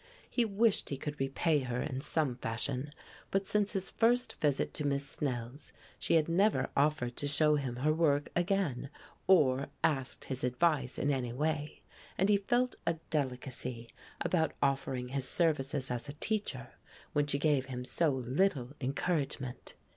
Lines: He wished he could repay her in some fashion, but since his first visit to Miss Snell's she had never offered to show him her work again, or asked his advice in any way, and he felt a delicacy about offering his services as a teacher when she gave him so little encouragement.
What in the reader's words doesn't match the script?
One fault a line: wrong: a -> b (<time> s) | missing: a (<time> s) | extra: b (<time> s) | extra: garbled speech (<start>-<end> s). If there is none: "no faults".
no faults